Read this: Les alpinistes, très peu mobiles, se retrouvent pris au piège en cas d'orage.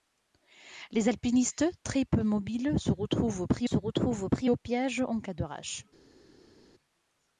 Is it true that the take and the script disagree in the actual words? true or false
true